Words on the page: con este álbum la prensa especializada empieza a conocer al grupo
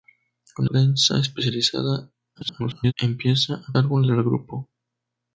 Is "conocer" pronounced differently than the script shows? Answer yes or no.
yes